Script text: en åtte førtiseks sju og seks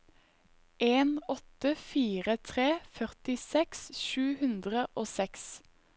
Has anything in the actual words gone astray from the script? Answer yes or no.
yes